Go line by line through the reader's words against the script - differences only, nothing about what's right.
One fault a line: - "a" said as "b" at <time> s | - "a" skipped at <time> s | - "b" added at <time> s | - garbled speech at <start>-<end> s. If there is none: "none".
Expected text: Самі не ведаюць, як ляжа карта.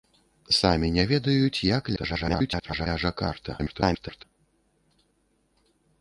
- garbled speech at 2.0-2.9 s
- garbled speech at 3.6-4.2 s